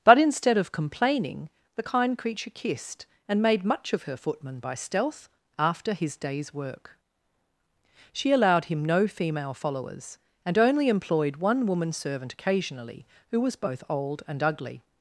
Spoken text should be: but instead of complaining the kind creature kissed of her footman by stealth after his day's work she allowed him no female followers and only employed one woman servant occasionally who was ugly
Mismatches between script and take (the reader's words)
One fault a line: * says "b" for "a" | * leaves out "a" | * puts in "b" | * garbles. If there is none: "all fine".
* puts in "and made much"
* puts in "both old and"